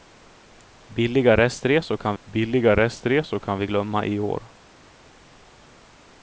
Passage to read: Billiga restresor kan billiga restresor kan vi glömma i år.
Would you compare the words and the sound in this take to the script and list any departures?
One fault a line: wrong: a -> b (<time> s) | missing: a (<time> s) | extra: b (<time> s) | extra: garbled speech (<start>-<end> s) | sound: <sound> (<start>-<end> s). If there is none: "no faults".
no faults